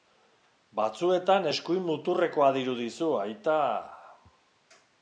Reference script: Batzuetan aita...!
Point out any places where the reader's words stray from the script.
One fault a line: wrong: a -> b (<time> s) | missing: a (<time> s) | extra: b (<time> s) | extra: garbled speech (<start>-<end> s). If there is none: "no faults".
extra: eskuin muturrekoa dirudizu (1.5 s)